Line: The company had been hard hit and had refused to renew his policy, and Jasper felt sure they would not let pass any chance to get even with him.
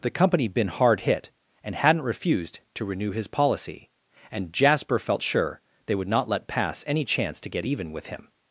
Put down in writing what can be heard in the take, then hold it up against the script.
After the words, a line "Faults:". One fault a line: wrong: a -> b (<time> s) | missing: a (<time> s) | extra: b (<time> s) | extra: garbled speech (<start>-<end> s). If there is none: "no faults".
The company been hard hit and hadn't refused to renew his policy, and Jasper felt sure they would not let pass any chance to get even with him.
Faults:
missing: had (0.5 s)
wrong: had -> hadn't (1.8 s)